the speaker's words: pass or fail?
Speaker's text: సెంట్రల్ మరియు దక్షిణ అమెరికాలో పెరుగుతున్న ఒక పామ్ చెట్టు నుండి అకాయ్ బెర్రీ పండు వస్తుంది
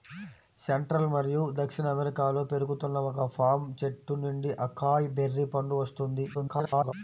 fail